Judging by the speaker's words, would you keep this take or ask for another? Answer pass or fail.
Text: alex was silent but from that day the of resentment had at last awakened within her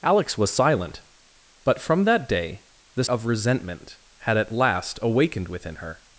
pass